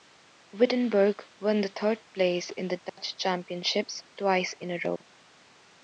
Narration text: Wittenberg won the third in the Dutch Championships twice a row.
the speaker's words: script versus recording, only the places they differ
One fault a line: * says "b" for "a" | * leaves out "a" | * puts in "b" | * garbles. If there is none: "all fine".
* puts in "place"
* puts in "in"